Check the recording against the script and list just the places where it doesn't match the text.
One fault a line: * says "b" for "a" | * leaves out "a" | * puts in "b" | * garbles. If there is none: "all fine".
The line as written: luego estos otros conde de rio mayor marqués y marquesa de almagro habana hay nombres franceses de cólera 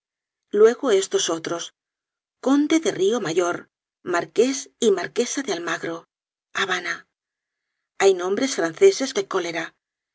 all fine